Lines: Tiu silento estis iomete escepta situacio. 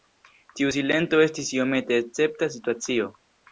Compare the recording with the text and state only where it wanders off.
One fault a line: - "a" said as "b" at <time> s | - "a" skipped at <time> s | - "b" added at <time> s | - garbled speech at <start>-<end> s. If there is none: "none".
none